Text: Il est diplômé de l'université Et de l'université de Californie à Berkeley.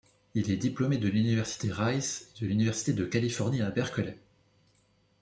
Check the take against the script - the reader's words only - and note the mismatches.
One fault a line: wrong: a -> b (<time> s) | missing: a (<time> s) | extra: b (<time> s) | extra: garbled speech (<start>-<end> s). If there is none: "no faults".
extra: Rice (1.7 s)